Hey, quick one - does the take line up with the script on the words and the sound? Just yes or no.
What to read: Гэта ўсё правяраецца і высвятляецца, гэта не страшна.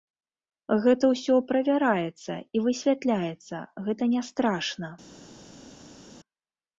yes